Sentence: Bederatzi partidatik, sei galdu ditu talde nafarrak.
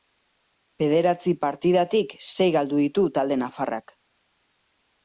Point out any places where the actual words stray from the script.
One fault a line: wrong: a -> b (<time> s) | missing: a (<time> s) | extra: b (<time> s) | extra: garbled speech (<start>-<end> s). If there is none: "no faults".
no faults